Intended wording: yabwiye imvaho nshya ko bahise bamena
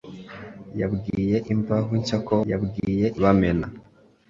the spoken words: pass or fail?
fail